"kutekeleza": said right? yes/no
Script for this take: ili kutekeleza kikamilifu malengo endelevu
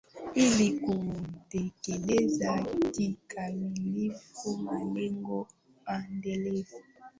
yes